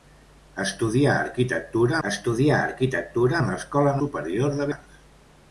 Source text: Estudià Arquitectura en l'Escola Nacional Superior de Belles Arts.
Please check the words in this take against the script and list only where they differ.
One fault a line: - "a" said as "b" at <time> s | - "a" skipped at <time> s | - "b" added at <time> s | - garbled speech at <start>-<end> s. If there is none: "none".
- "estudià Arquitectura" added at 2.1 s
- "Nacional" skipped at 3.9 s
- "Belles" skipped at 4.7 s